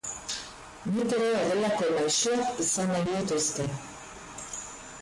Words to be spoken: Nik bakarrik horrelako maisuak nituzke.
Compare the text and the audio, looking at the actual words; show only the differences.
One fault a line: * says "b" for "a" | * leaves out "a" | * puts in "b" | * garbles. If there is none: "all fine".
* says "ere" for "bakarrik"
* puts in "izan nahi"